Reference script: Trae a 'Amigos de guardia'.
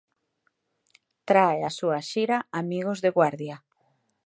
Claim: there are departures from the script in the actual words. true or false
true